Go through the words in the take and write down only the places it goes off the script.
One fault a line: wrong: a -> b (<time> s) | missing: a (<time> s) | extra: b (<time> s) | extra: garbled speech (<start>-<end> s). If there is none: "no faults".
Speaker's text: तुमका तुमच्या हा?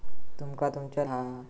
no faults